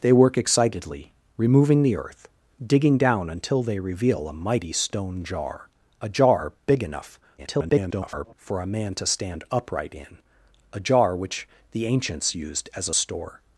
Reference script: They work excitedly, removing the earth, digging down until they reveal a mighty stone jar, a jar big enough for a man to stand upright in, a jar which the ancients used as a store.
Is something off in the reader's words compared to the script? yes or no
yes